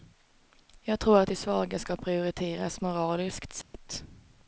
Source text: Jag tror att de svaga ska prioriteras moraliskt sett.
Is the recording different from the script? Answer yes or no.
no